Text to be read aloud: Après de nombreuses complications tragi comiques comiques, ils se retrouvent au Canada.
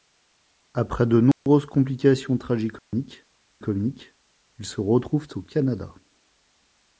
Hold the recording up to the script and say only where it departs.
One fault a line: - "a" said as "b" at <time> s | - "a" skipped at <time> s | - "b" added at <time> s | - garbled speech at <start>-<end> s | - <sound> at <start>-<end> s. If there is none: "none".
- dropout at 1.3-1.5 s
- dropout at 2.8-2.9 s